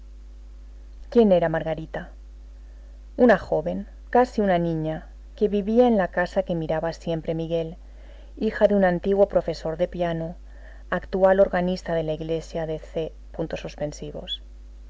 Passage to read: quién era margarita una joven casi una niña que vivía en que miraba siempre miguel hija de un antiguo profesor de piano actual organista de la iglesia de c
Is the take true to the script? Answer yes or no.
no